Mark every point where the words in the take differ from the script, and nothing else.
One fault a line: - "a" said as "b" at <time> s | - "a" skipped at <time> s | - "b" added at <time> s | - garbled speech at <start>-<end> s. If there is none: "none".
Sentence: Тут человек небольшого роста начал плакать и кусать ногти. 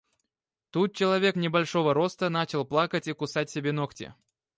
- "себе" added at 3.5 s